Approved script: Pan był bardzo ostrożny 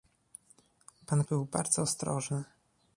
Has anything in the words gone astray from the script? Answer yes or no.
no